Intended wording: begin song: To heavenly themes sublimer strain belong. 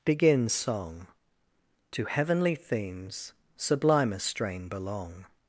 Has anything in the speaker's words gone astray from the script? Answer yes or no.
no